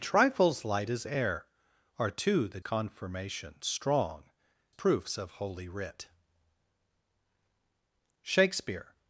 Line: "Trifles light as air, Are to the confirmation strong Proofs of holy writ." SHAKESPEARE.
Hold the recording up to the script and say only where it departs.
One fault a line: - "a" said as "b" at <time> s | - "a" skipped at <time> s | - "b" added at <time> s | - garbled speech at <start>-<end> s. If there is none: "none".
none